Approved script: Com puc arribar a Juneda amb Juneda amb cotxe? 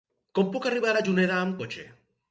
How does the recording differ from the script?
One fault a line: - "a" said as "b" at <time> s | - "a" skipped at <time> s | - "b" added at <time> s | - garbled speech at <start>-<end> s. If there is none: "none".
- "Juneda amb" skipped at 1.6 s